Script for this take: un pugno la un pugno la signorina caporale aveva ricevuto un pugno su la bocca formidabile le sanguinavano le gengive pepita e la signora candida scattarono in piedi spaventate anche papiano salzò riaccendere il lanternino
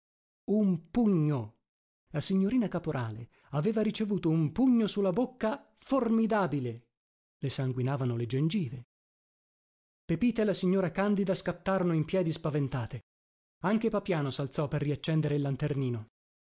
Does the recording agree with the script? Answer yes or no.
no